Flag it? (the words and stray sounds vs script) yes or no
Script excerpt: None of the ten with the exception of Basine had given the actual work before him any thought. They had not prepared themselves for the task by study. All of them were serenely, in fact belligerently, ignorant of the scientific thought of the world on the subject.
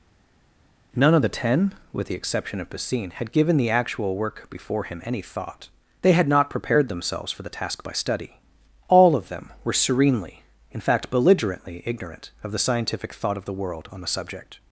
no